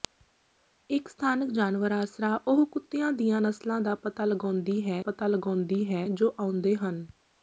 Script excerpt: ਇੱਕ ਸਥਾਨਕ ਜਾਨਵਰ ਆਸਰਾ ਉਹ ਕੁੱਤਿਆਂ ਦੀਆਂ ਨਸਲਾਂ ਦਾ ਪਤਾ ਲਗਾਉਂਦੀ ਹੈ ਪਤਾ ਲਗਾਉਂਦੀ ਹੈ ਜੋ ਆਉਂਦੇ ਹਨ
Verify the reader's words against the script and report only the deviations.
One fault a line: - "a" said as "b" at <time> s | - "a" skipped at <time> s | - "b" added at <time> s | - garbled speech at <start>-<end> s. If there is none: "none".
none